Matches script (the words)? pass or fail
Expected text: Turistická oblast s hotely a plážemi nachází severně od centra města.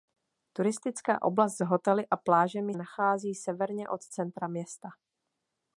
pass